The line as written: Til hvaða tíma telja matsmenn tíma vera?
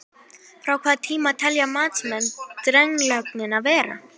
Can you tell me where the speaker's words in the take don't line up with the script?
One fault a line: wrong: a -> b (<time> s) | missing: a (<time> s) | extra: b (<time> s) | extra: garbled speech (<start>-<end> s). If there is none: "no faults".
wrong: Til -> Frá (0.6 s)
wrong: tíma -> drenlögnina (2.7 s)